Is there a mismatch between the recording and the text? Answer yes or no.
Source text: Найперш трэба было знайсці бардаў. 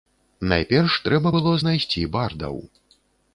no